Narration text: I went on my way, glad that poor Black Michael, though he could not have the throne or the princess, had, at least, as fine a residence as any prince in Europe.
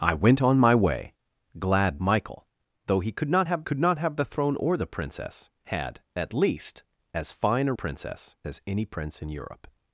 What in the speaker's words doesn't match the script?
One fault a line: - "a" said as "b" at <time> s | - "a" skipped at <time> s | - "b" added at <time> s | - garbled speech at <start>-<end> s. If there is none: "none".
- "that poor Black" skipped at 2.0 s
- "could not have" added at 3.6 s
- "residence" said as "princess" at 7.7 s